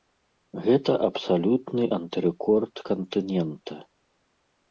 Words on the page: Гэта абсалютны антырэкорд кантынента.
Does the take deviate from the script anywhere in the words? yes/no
no